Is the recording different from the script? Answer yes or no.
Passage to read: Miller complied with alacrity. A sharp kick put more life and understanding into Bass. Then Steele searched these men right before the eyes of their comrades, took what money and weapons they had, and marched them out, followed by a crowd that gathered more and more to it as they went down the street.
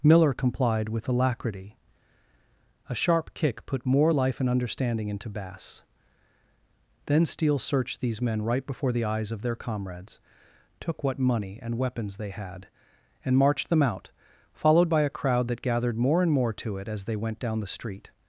no